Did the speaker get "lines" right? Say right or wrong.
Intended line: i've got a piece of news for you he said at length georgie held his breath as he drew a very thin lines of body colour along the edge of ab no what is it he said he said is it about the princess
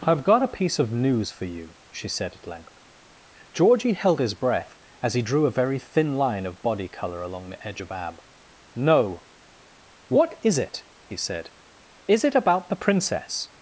wrong